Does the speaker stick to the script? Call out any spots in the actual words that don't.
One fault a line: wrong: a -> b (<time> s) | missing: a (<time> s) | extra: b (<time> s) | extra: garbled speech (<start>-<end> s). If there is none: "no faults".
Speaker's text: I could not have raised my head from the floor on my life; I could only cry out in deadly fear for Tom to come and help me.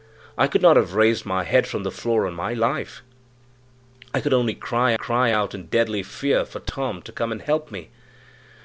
extra: cry (4.9 s)